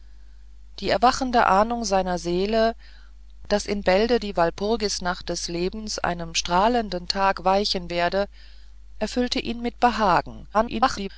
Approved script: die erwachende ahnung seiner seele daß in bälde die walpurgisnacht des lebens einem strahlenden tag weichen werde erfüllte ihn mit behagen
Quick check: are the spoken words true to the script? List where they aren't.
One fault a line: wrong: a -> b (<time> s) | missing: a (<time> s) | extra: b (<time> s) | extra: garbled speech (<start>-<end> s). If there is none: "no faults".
extra: garbled speech (10.5-11.1 s)